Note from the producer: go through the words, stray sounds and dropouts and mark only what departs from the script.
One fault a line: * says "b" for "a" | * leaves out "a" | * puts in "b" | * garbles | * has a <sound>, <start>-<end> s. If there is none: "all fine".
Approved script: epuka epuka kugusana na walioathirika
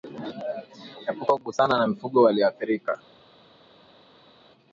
* leaves out "epuka"
* puts in "mifugo"